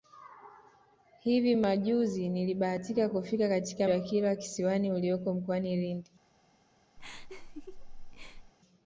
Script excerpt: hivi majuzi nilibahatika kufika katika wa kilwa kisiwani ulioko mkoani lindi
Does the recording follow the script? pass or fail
pass